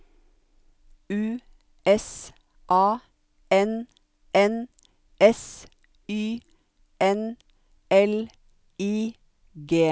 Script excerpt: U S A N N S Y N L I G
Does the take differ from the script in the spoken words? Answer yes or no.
no